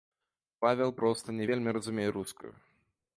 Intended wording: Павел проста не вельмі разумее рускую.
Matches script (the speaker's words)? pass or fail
pass